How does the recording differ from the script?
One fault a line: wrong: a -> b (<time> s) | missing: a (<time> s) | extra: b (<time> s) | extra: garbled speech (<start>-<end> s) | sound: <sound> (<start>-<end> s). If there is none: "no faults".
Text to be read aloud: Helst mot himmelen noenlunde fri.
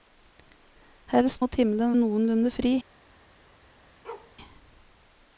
sound: bark (4.0-4.3 s)